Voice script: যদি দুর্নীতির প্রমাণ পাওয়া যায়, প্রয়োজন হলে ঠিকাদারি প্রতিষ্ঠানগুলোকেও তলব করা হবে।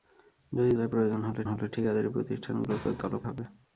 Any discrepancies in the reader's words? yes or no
yes